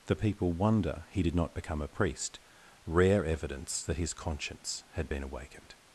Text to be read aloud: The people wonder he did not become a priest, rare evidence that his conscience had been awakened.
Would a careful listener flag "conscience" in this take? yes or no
no